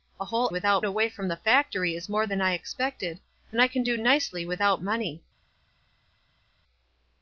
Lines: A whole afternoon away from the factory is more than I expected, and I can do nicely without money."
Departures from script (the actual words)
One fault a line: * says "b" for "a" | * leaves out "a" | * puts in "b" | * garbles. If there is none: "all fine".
* says "without" for "afternoon"